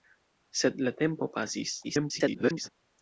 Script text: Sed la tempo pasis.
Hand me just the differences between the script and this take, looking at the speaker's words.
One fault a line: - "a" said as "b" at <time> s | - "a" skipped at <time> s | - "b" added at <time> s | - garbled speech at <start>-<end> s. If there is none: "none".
- garbled speech at 1.8-2.7 s